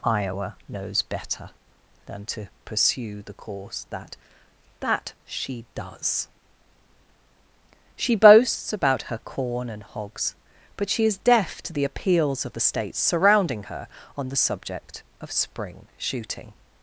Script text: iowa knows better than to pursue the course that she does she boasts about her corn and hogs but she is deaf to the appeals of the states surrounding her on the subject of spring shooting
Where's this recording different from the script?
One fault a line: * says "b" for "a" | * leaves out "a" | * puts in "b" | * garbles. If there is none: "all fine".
* puts in "that"